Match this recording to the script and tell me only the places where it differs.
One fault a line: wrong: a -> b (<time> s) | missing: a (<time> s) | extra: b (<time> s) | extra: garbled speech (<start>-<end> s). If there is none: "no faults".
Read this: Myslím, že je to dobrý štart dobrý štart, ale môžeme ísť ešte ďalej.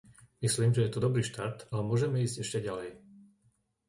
missing: dobrý štart (1.8 s)